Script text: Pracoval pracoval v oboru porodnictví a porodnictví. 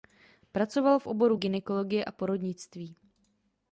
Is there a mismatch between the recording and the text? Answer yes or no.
yes